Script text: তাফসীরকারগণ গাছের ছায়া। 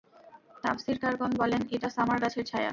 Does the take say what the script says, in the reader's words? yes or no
no